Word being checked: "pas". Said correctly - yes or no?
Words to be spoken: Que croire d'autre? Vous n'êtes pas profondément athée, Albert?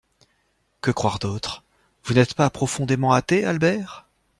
yes